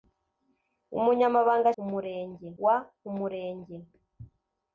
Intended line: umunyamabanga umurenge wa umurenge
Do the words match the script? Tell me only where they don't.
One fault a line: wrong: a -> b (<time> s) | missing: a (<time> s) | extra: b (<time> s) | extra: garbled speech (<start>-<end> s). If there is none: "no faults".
no faults